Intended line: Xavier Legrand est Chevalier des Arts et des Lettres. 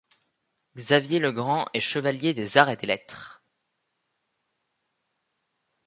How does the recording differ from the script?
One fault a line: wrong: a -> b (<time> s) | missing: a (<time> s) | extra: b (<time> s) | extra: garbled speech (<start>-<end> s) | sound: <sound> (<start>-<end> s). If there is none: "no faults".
no faults